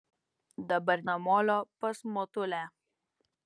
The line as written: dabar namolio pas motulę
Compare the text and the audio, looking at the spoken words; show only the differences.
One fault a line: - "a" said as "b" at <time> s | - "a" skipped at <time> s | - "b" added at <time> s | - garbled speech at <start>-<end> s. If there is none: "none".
none